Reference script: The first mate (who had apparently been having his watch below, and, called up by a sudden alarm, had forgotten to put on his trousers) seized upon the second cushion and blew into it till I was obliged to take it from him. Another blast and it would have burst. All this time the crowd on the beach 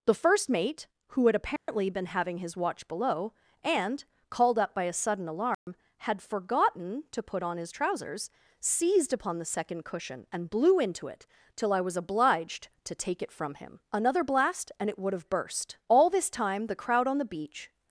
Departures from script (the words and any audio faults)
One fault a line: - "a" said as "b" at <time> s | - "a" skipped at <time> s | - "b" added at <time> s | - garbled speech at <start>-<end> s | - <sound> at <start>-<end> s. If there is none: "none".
- dropout at 1.6-1.7 s
- dropout at 5.5-5.7 s